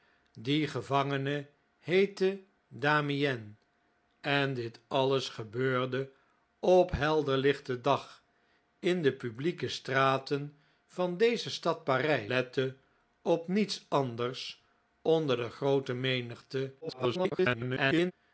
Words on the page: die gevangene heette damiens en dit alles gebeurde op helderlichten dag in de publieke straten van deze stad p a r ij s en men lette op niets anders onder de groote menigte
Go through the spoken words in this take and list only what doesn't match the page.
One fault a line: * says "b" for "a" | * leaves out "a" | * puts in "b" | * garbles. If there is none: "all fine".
* leaves out "s en men"
* garbles